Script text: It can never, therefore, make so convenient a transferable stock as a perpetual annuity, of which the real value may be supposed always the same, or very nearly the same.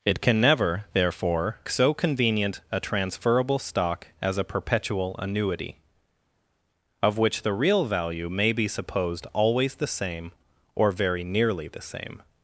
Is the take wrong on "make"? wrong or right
wrong